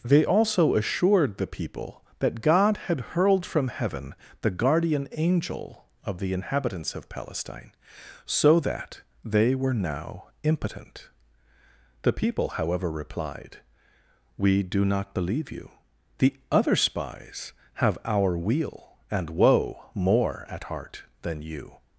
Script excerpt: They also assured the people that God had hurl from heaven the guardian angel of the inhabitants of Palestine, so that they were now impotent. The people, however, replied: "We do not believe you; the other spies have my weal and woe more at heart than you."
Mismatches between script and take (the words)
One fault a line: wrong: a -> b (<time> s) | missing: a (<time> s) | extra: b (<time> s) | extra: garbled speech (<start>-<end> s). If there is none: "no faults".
wrong: hurl -> hurled (3.1 s)
wrong: my -> our (18.1 s)